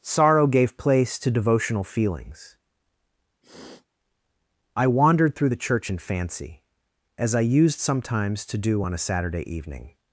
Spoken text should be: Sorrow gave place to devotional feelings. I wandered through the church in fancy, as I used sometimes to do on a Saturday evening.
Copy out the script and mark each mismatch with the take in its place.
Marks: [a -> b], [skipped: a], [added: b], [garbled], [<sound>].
Sorrow gave place to devotional feelings. [sniff] I wandered through the church in fancy, as I used sometimes to do on a Saturday evening.